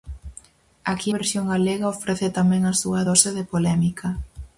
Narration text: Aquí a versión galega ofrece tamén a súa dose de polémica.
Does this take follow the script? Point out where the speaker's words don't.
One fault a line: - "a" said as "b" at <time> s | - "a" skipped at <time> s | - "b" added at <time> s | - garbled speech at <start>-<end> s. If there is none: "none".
- "a" skipped at 1.1 s